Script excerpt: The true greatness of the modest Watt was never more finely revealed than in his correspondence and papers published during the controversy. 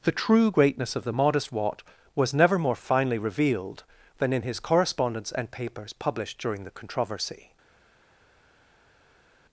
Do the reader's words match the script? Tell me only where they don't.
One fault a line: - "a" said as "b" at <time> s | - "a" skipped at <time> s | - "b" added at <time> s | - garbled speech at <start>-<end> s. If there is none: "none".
none